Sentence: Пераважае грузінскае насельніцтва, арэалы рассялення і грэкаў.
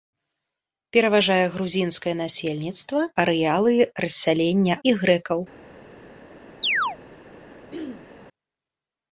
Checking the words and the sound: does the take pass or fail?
fail